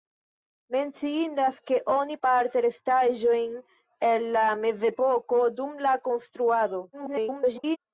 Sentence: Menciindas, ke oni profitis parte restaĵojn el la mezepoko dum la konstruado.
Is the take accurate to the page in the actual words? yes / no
no